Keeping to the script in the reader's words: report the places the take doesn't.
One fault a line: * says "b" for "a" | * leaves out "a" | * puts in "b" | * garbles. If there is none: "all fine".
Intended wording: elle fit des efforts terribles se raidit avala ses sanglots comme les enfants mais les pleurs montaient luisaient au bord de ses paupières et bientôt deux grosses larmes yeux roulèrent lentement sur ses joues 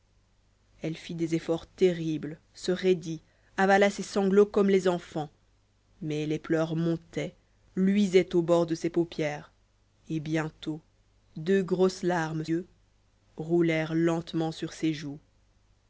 all fine